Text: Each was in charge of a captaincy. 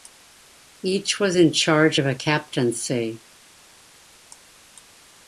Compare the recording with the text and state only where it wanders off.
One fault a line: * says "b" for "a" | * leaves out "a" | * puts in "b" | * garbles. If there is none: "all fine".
all fine